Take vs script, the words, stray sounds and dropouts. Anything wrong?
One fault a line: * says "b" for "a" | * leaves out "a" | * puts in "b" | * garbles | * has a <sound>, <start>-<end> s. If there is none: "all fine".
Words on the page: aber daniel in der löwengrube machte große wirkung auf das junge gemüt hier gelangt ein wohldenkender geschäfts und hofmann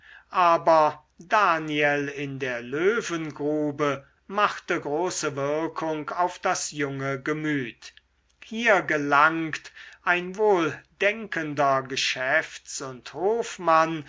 all fine